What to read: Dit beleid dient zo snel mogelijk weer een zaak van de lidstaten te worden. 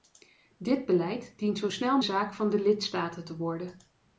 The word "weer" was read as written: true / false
false